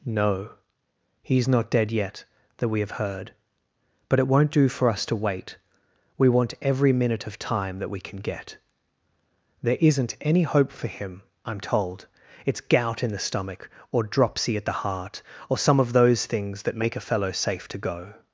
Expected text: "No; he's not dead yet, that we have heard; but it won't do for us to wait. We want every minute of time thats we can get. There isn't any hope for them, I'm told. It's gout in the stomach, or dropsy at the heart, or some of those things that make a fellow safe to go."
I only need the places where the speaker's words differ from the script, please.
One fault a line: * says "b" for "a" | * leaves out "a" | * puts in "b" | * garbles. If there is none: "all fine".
* says "that" for "thats"
* says "him" for "them"